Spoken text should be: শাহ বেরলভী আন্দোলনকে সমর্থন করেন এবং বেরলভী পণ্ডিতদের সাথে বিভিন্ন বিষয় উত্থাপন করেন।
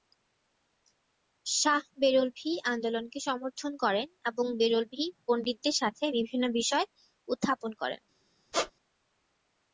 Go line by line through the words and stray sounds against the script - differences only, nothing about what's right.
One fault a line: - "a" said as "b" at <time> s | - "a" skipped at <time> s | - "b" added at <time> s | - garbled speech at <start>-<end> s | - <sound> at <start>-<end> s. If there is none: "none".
- squeak at 8.5-8.7 s